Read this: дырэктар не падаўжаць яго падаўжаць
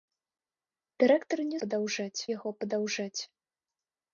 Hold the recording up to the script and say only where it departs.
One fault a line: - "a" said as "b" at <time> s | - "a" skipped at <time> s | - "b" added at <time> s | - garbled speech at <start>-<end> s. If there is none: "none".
none